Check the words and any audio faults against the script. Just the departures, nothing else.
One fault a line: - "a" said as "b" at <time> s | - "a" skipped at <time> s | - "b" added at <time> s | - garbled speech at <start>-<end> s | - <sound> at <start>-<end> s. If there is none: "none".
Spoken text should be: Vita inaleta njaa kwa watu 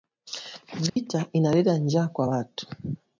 - dropout at 0.9-1.0 s